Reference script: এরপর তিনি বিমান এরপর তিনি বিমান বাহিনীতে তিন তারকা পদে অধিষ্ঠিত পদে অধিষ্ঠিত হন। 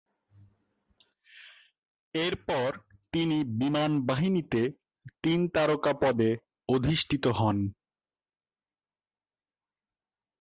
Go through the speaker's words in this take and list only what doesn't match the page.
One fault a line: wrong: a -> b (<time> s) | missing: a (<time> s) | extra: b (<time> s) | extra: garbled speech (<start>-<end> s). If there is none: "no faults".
missing: এরপর তিনি বিমান (3.9 s)
missing: পদে অধিষ্ঠিত (7.2 s)